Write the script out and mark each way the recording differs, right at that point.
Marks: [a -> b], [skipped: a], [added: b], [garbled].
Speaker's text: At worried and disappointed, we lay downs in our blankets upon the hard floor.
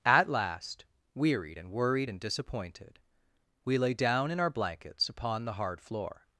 At [added: last wearied and] worried and disappointed, we lay [downs -> down] in our blankets upon the hard floor.